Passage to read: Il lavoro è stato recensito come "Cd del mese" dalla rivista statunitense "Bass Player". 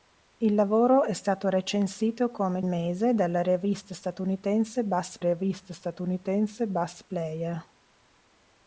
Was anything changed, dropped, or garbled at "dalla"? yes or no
yes